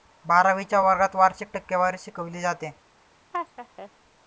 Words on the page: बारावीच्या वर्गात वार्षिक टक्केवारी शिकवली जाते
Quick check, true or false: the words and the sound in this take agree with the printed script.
false